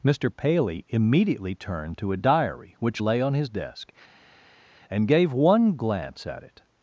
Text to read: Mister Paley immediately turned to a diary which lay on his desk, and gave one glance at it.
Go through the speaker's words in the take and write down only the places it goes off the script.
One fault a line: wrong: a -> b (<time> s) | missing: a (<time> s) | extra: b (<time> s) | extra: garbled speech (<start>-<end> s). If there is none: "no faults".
no faults